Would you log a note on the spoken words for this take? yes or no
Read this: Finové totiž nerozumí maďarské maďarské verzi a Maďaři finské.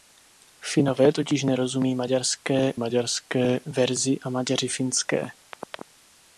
no